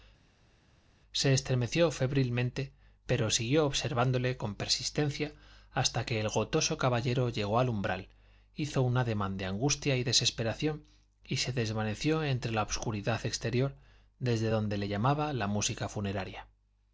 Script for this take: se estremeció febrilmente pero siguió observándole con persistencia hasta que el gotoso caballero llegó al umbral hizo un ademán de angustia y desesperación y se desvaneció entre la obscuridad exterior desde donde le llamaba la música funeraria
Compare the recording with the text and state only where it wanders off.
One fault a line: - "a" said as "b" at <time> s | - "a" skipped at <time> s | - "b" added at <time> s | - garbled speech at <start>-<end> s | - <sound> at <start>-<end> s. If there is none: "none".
none